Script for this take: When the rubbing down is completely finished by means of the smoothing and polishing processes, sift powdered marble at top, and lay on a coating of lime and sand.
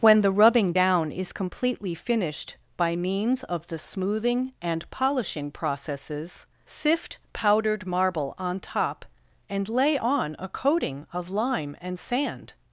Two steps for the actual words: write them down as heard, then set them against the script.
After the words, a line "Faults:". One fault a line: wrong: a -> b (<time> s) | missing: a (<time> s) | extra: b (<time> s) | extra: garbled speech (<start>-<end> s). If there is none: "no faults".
When the rubbing down is completely finished by means of the smoothing and polishing processes, sift powdered marble on top, and lay on a coating of lime and sand.
Faults:
wrong: at -> on (8.4 s)